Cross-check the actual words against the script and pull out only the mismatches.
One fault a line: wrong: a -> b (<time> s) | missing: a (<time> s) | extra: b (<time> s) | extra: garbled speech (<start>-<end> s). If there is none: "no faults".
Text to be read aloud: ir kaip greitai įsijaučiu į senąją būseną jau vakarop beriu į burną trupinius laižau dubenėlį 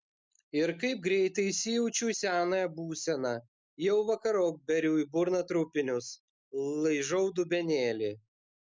no faults